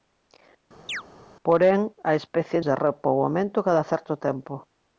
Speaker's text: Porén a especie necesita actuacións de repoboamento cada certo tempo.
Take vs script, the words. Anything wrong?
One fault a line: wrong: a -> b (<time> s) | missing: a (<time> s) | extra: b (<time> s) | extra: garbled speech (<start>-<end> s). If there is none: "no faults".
missing: necesita actuacións (2.6 s)